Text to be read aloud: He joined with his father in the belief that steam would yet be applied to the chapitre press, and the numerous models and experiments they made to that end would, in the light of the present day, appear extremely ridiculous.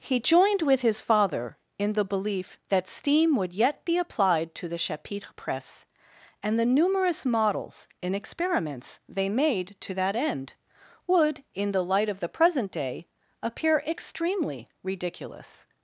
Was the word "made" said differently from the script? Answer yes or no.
no